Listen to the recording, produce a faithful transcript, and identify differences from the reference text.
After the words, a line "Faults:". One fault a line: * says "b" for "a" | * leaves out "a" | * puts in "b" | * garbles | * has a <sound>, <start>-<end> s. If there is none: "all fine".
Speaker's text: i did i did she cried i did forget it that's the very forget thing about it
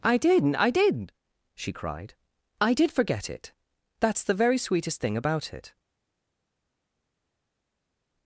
i did i did she cried i did forget it that's the very sweetest thing about it
Faults:
* says "sweetest" for "forget"